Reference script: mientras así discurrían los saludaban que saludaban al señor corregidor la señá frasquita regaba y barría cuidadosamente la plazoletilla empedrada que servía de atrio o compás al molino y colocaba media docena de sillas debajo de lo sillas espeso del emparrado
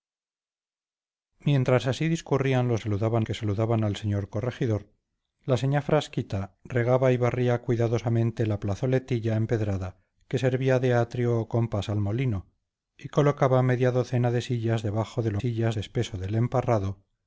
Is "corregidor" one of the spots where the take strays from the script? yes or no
no